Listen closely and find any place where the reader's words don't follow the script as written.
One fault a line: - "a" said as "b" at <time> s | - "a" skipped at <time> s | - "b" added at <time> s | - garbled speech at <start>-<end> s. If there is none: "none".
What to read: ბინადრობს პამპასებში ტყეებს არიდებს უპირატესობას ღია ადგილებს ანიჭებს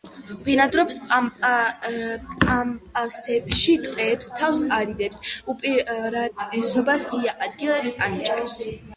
- "თავს" added at 4.4 s